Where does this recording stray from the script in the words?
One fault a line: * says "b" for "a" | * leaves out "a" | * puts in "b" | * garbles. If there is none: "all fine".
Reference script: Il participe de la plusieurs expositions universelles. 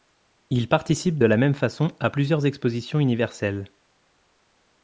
* puts in "même façon à"